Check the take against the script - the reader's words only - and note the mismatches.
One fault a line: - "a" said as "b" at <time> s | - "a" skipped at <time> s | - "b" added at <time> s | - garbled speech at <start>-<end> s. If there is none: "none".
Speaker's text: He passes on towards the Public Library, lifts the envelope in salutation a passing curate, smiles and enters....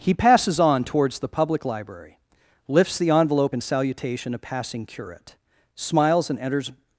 none